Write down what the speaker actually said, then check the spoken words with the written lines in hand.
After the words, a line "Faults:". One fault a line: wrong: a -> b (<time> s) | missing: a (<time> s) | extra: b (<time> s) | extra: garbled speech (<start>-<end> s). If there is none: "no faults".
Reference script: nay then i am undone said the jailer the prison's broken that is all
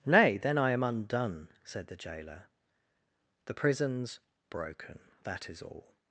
nay then i am undone said the jailer the prison's broken that is all
Faults:
no faults